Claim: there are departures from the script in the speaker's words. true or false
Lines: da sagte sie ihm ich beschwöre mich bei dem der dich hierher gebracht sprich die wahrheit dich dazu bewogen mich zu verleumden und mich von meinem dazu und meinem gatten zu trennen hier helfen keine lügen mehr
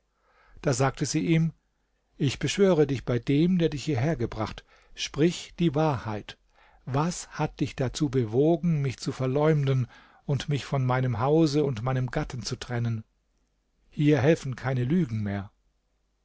true